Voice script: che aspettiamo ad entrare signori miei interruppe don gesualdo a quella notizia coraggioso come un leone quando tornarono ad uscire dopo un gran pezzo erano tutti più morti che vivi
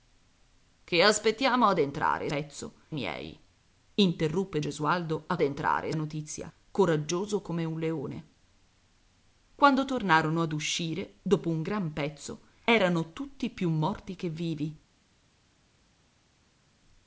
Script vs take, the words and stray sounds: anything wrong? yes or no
yes